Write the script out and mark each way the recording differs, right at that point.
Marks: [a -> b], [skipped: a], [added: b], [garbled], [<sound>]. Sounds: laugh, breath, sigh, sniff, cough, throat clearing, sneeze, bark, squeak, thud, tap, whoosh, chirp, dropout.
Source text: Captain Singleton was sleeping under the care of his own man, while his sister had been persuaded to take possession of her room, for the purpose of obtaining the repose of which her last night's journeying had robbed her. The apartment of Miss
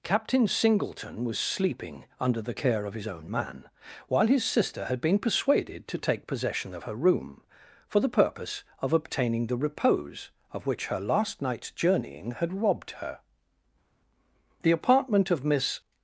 Captain Singleton was sleeping under the care of his own man, while his sister had been persuaded to take possession of her room, for the purpose of obtaining the repose of which her last night's journeying had robbed her. The apartment of Miss